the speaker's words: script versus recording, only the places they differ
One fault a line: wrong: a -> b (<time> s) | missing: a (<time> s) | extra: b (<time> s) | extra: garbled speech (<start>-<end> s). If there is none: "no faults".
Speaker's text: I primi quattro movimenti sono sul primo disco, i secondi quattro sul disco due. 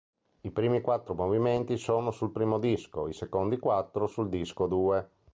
no faults